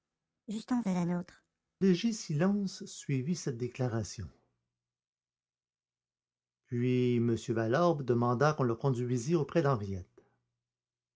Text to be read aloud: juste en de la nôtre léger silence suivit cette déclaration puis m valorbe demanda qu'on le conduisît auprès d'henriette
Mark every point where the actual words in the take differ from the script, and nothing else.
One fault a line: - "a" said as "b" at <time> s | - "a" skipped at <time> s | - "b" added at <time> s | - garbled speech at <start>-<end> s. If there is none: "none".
none